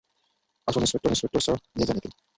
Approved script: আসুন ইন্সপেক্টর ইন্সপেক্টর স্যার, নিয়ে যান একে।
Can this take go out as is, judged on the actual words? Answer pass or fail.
pass